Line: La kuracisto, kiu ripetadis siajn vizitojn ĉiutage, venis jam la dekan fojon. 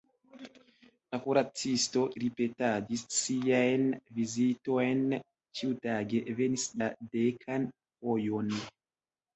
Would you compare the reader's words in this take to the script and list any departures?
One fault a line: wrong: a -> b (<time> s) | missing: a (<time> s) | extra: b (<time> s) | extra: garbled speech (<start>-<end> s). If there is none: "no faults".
missing: kiu (2.0 s)
missing: jam (6.7 s)